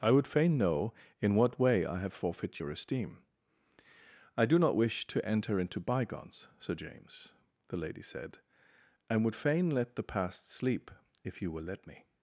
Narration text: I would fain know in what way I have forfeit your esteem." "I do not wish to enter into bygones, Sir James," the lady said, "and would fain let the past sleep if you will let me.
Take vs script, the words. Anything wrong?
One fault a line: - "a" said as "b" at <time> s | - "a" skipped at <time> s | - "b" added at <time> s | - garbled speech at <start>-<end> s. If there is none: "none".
none